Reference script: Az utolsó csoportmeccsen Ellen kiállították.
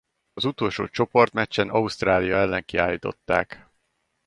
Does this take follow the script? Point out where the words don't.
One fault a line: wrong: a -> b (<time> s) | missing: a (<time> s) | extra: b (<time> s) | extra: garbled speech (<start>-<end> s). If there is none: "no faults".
extra: Ausztrália (1.7 s)